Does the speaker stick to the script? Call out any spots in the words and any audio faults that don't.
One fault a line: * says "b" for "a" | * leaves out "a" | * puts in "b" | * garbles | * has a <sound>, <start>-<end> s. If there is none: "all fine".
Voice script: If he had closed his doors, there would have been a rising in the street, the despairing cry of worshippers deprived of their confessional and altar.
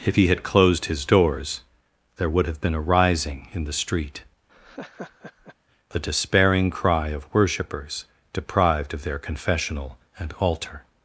* has a laugh, 4.5-5.6 s